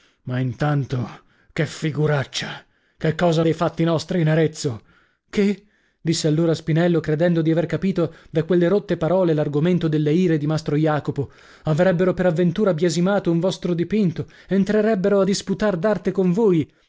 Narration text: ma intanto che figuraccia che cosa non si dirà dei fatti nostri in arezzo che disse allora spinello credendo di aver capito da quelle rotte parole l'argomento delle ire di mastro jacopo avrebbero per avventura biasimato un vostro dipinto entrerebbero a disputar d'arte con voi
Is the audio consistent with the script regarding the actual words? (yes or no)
no